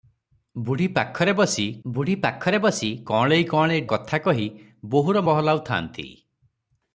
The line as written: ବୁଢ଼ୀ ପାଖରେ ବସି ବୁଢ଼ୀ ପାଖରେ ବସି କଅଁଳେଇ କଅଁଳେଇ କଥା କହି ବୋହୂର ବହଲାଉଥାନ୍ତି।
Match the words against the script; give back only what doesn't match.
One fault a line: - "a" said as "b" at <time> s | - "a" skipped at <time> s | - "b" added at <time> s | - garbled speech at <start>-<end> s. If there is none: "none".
none